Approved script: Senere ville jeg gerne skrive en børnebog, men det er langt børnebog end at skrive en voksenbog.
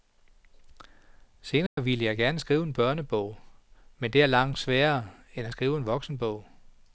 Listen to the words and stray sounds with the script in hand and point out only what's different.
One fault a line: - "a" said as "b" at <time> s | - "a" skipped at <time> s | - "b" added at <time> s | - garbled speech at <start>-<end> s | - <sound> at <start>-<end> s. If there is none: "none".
- dropout at 1.7-1.8 s
- "børnebog" said as "sværere" at 4.6 s